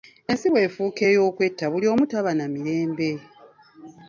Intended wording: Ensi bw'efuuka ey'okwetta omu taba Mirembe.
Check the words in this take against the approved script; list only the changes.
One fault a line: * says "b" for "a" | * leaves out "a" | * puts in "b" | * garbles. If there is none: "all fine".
* puts in "buli"
* puts in "na"